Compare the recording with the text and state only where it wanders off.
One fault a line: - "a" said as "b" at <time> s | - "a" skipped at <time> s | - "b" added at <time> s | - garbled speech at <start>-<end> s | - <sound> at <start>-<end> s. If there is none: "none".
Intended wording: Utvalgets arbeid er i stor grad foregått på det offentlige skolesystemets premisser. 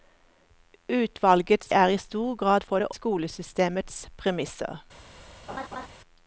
- "arbeid" skipped at 1.7 s
- "foregått" skipped at 2.7 s
- "offentlige" skipped at 2.9 s
- laugh at 5.5-5.9 s